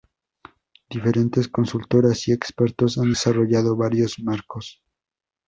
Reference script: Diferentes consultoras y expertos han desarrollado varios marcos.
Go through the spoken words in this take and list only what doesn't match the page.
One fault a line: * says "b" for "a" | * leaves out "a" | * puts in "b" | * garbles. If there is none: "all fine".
all fine